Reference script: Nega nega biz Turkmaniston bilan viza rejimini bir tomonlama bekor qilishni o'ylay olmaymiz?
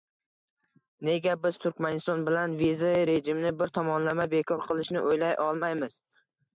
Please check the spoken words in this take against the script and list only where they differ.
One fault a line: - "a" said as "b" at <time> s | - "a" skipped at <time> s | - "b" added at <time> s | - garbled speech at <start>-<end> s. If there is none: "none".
- "nega" skipped at 1.4 s